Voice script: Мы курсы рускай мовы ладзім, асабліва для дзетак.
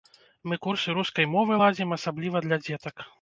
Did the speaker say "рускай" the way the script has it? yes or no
yes